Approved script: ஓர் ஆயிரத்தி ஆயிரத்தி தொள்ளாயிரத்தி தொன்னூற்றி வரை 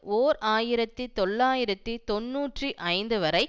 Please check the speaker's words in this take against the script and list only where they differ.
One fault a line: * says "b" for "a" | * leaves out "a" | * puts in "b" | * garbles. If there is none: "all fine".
* leaves out "ஆயிரத்தி"
* puts in "ஐந்து"